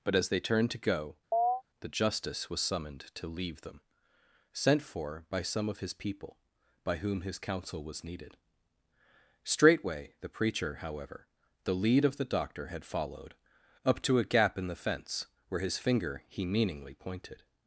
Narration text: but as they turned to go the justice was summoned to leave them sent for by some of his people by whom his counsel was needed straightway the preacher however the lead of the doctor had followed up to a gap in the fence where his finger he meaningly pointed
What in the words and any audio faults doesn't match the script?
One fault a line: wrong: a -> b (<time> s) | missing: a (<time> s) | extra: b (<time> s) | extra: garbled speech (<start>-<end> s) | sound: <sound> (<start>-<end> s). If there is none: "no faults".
sound: chirp (1.3-1.6 s)